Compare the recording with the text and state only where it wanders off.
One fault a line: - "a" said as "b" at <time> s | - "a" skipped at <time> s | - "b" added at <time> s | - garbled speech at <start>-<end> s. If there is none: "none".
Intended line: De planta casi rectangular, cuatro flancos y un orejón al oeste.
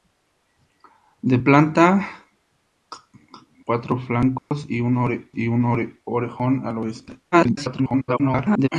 - "casi rectangular cuatro flancos" said as "cuatro flancos y un" at 3.6 s
- garbled speech at 7.3-8.7 s